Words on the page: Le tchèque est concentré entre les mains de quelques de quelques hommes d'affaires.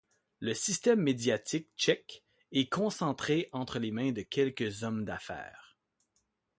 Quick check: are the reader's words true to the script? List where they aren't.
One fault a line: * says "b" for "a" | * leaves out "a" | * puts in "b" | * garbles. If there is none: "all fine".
* puts in "système médiatique"
* leaves out "de quelques"